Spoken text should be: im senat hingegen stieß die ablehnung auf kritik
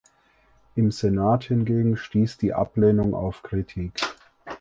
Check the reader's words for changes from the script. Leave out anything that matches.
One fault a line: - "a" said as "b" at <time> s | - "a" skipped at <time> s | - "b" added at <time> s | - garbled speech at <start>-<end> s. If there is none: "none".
none